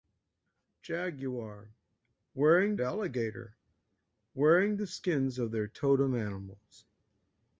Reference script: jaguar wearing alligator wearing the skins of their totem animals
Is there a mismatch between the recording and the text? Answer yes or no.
no